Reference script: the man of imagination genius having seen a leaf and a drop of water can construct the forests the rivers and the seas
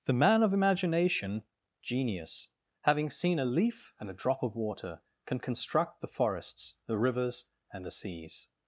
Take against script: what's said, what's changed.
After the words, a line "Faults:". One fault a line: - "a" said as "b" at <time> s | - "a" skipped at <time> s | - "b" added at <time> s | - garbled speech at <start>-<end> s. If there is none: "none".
the man of imagination genius having seen a leaf and a drop of water can construct the forests the rivers and the seas
Faults:
none